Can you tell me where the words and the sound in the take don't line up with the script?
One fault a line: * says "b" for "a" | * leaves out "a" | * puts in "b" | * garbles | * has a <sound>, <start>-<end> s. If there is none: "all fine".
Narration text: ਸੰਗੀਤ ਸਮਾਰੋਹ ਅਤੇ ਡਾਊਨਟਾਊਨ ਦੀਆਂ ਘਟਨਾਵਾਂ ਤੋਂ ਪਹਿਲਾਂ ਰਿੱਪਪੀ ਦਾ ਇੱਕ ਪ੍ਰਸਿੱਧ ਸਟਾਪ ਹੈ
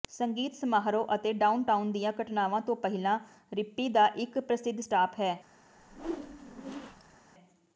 * has a whoosh, 5.8-7.2 s